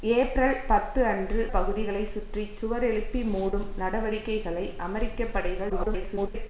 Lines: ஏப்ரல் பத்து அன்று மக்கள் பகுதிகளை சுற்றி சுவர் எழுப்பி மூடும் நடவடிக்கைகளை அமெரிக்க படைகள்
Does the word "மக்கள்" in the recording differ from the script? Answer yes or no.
yes